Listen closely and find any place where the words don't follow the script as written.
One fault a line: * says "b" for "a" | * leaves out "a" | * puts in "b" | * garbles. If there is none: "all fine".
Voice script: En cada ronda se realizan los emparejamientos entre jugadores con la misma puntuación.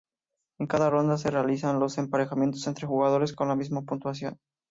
all fine